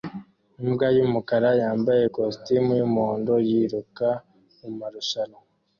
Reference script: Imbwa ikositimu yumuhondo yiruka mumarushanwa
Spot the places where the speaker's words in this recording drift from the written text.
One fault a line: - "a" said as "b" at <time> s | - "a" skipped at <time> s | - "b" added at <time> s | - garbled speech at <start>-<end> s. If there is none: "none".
- "yumukara yambaye" added at 1.0 s